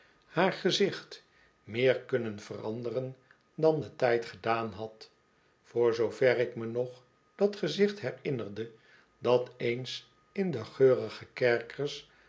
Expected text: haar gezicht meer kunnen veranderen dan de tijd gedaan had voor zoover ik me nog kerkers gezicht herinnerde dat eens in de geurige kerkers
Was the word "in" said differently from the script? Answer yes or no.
no